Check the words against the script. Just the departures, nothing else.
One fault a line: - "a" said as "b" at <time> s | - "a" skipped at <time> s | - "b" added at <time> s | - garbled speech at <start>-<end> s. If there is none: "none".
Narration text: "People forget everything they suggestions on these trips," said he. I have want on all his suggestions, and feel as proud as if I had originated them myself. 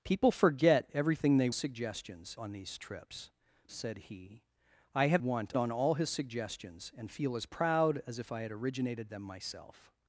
none